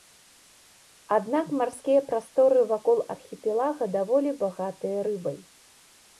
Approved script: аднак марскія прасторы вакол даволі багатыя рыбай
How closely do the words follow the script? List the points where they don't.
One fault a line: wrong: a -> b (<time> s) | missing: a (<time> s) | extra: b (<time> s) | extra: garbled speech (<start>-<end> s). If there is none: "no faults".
extra: архіпелага (3.1 s)